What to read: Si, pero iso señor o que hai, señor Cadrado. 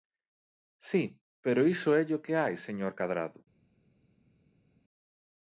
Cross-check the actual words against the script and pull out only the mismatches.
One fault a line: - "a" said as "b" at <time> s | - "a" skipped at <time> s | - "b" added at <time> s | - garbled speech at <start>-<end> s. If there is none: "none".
- "señor" said as "élle" at 2.0 s